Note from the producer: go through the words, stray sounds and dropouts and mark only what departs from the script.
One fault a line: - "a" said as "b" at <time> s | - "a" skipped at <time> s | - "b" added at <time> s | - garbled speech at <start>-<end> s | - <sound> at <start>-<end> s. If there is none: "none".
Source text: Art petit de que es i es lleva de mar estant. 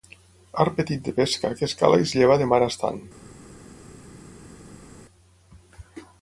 - "pesca" added at 1.2 s
- "cala" added at 1.8 s